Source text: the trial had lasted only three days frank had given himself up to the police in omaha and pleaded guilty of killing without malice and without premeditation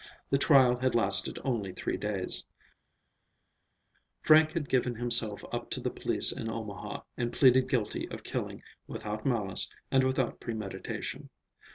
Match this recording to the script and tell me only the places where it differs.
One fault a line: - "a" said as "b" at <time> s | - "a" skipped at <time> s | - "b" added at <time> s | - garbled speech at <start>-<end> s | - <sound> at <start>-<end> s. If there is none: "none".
none